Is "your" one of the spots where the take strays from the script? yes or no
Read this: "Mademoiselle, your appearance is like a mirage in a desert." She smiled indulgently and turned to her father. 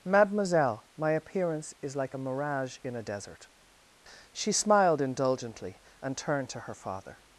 yes